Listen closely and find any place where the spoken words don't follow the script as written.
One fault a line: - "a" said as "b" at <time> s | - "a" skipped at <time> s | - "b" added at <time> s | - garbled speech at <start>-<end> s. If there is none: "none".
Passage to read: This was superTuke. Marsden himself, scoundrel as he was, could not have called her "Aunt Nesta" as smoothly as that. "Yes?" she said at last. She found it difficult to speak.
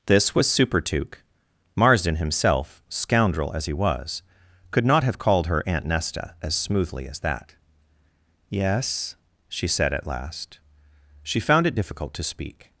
none